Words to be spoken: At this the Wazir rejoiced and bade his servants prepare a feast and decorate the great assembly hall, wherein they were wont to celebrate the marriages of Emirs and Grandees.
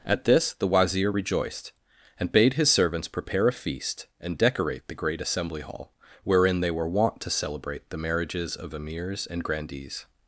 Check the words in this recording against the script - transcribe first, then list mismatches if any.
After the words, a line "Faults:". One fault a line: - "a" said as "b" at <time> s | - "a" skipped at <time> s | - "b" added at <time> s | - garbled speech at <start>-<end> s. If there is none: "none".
At this the Wazir rejoiced and bade his servants prepare a feast and decorate the great assembly hall, wherein they were wont to celebrate the marriages of Emirs and Grandees.
Faults:
none